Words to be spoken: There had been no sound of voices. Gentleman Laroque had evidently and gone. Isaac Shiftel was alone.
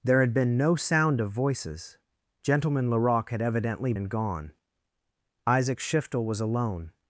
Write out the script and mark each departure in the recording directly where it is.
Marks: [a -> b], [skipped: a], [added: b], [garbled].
There had been no sound of voices. Gentleman Laroque had evidently and gone. Isaac Shiftel was alone.